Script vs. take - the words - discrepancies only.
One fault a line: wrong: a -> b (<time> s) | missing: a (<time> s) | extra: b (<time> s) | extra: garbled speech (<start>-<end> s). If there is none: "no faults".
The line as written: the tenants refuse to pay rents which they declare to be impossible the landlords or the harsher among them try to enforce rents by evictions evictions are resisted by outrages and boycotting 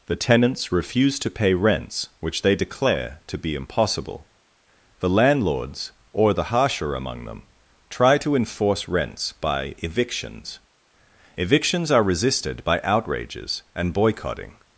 no faults